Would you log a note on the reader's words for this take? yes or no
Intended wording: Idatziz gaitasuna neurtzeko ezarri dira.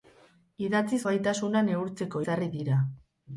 no